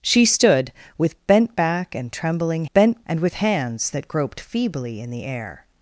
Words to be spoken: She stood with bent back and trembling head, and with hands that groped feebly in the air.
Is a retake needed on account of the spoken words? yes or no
yes